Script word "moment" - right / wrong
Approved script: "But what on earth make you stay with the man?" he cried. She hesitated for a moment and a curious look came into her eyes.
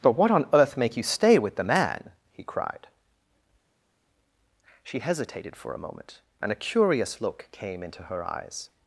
right